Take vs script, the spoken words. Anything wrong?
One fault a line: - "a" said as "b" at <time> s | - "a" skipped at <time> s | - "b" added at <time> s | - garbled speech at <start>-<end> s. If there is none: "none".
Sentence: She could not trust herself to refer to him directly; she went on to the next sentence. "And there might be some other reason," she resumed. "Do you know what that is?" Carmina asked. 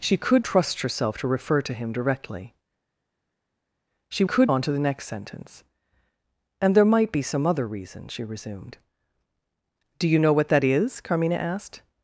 - "not" skipped at 0.4 s
- "went" said as "could" at 4.2 s